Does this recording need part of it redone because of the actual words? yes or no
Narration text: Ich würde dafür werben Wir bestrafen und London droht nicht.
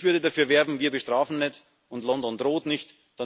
yes